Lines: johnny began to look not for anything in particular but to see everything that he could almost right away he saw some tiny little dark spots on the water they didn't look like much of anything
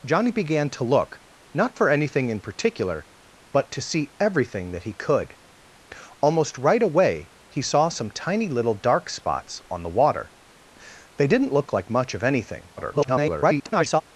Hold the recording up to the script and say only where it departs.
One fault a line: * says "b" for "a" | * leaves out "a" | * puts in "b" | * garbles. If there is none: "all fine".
* garbles